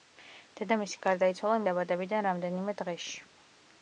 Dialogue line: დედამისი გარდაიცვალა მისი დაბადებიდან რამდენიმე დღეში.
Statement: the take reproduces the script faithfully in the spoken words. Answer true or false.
false